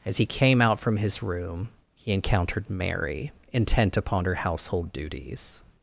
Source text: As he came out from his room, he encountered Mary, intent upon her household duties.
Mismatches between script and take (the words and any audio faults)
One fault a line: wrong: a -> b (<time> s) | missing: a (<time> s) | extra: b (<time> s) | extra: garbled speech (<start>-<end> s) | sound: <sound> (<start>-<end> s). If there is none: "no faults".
no faults